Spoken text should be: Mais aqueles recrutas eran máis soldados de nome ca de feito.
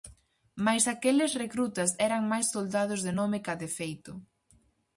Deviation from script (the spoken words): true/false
false